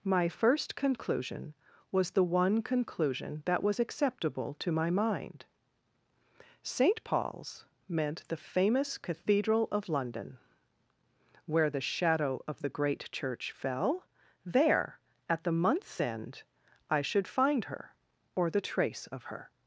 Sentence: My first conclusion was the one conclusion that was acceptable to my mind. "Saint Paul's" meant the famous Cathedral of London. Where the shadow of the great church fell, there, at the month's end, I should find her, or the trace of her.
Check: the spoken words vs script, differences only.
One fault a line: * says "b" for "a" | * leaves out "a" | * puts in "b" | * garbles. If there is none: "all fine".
all fine